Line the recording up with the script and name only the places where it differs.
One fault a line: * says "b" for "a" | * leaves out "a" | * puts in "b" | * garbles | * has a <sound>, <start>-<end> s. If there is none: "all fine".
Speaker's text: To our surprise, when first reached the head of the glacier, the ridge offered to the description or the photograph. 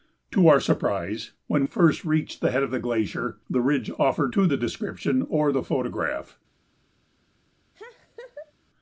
* has a laugh, 7.7-8.5 s